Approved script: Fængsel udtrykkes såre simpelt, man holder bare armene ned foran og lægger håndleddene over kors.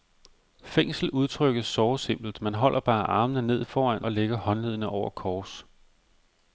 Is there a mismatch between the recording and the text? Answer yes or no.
no